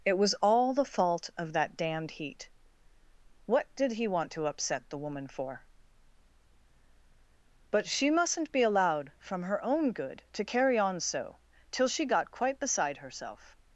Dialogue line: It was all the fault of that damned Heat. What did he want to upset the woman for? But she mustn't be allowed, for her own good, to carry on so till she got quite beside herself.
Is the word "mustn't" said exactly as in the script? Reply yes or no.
yes